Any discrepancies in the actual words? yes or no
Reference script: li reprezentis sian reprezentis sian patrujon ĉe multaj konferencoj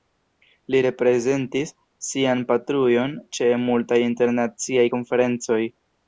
yes